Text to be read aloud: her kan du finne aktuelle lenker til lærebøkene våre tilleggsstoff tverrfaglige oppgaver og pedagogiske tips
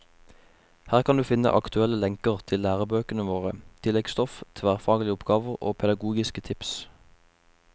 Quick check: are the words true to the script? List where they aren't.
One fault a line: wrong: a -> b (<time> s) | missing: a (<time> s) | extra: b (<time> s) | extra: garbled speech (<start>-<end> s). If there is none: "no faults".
no faults